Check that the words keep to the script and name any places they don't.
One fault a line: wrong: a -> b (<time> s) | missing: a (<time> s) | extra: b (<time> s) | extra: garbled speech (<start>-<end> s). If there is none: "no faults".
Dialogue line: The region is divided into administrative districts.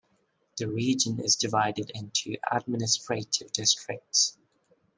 no faults